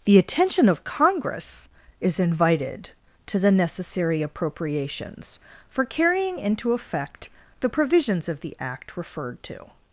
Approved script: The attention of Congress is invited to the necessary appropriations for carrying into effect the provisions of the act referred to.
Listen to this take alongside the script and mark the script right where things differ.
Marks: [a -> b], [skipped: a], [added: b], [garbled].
The attention of Congress is invited to the necessary appropriations for carrying into effect the provisions of the act referred to.